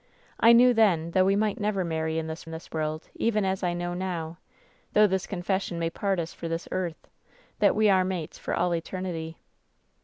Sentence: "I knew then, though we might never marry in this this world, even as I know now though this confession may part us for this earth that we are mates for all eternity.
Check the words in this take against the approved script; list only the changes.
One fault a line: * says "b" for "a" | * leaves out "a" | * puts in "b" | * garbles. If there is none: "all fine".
all fine